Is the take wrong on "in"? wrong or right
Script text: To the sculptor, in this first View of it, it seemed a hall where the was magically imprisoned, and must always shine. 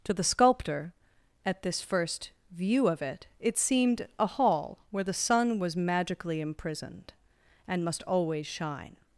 wrong